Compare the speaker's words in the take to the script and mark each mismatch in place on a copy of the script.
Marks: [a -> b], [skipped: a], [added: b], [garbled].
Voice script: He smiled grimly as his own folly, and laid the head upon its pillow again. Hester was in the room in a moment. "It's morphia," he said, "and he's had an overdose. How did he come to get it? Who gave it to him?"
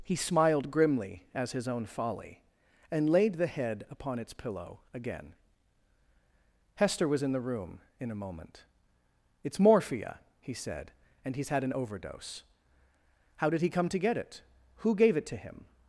He smiled grimly as his own folly, and laid the head upon its pillow again. Hester was in the room in a moment. "It's morphia," he said, "and he's had an overdose. How did he come to get it? Who gave it to him?"